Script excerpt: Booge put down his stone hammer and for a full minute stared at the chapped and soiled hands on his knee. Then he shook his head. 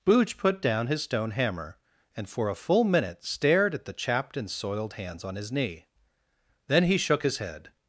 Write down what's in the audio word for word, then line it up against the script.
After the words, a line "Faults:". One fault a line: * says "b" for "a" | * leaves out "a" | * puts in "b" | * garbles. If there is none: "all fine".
Booge put down his stone hammer and for a full minute stared at the chapped and soiled hands on his knee. Then he shook his head.
Faults:
all fine